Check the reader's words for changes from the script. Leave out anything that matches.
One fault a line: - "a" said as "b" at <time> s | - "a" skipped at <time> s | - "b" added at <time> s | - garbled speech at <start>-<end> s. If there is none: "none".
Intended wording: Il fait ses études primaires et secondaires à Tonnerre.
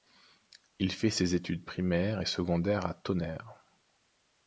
none